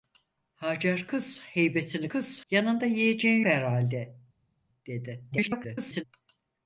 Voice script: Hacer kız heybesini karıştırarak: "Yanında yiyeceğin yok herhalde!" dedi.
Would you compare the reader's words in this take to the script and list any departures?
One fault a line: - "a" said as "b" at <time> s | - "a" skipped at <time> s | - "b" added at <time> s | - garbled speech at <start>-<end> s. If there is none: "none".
- "karıştırarak" said as "kız" at 2.1 s
- "yok" skipped at 3.4 s
- garbled speech at 5.3-6.0 s